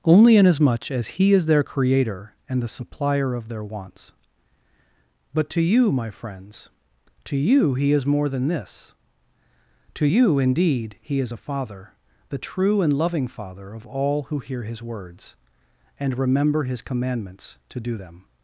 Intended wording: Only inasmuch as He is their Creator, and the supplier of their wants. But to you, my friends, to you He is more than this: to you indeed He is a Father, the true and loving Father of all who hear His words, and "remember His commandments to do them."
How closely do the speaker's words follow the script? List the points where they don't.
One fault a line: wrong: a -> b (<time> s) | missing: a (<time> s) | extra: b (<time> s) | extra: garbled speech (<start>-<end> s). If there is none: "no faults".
no faults